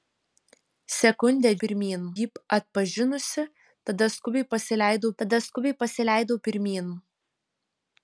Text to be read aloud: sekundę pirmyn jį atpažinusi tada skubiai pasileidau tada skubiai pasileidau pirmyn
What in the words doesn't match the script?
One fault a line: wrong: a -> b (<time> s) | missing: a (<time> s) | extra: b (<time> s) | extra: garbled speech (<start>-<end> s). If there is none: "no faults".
no faults